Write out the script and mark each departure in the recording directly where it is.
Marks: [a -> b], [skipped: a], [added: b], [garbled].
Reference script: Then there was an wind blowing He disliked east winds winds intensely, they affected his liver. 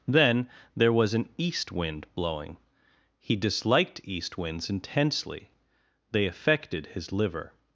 Then there was an [added: east] wind blowing He disliked east winds [skipped: winds] intensely, they affected his liver.